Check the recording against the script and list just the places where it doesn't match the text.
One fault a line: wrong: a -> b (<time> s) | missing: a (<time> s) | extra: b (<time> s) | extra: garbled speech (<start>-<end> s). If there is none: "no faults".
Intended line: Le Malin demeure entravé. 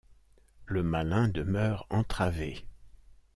no faults